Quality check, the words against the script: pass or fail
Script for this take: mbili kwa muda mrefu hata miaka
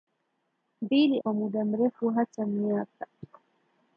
pass